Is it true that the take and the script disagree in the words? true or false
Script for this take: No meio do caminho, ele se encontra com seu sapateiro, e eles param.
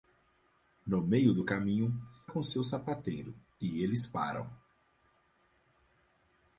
true